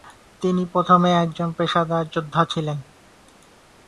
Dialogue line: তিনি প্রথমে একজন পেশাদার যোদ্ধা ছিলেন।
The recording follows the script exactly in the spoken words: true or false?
true